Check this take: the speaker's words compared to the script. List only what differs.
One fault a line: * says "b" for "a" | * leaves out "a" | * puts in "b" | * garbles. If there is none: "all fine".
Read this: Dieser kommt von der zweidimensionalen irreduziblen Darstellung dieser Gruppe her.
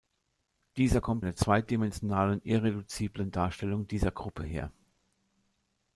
* leaves out "von"